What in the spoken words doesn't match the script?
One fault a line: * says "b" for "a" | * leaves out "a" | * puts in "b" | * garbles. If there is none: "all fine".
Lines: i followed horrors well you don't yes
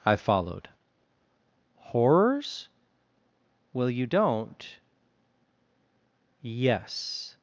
all fine